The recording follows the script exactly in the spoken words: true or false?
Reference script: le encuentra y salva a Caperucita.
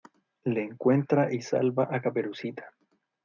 true